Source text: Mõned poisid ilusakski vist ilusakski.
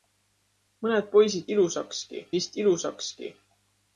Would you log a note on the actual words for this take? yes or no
no